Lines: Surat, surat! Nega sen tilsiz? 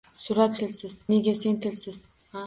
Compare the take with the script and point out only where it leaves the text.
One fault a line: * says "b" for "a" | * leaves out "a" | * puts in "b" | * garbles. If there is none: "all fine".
* says "tilsiz" for "surat"